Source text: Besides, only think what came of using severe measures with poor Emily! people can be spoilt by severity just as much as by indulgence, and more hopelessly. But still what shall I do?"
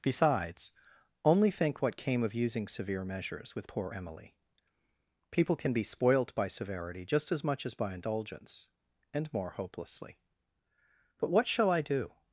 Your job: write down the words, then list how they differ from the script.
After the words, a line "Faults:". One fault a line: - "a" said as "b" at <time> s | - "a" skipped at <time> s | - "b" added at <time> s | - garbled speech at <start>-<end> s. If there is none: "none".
Besides, only think what came of using severe measures with poor Emily! people can be spoilt by severity just as much as by indulgence, and more hopelessly. But what shall I do?"
Faults:
- "still" skipped at 11.3 s